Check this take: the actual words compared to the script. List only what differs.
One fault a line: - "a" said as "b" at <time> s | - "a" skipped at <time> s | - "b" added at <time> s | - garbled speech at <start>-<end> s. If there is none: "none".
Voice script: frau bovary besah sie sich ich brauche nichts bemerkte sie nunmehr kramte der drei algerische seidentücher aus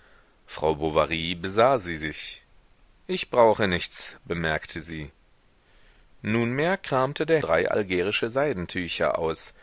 none